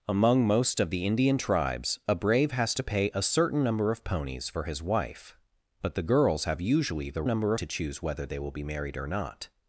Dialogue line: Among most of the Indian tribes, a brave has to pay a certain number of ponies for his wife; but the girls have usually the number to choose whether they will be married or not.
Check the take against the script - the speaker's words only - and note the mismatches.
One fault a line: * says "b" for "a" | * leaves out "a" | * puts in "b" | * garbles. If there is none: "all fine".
all fine